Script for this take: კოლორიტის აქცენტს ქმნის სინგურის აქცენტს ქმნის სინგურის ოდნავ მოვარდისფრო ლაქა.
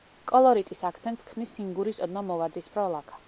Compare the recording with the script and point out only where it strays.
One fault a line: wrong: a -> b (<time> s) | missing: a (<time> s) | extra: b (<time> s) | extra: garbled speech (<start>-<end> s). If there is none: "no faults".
missing: აქცენტს ქმნის სინგურის (2.0 s)